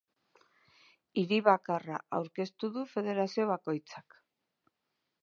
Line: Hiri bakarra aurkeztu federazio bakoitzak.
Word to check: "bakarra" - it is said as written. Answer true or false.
true